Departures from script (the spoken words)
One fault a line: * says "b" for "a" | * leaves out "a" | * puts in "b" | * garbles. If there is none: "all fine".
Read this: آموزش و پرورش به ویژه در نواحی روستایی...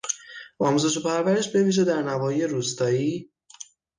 all fine